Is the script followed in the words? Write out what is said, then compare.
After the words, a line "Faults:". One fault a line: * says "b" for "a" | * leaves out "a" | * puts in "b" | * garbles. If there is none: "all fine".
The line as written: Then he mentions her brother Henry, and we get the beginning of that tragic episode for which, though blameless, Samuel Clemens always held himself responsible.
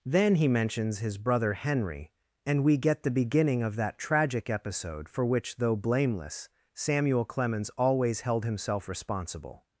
Then he mentions his brother Henry, and we get the beginning of that tragic episode for which, though blameless, Samuel Clemens always held himself responsible.
Faults:
* says "his" for "her"